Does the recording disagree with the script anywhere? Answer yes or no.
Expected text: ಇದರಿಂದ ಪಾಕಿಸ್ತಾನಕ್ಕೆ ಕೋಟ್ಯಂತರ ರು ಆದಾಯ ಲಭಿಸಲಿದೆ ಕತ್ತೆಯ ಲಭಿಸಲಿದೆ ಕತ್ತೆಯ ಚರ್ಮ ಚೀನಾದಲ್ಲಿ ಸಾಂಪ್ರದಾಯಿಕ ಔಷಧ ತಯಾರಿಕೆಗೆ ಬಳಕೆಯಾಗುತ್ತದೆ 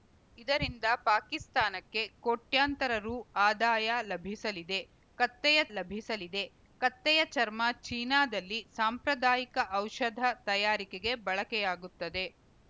no